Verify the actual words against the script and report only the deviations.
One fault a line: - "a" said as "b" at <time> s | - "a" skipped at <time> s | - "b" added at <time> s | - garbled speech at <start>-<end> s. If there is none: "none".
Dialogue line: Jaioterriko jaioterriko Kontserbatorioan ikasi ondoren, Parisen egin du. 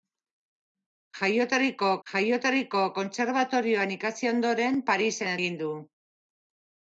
none